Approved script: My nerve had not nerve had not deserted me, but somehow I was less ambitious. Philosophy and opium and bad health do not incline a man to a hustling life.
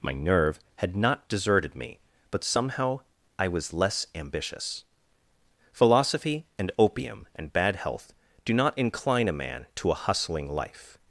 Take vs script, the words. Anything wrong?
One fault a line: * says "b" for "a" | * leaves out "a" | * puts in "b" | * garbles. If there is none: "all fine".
* leaves out "nerve had not"